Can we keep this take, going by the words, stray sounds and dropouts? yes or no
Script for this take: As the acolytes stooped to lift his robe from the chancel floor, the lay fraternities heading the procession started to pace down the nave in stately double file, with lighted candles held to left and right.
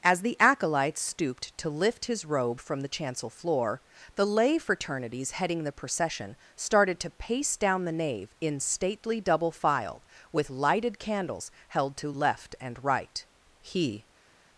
no